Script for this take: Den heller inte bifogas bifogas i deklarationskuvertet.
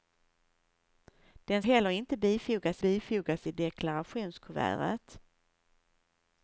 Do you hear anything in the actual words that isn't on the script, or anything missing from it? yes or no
no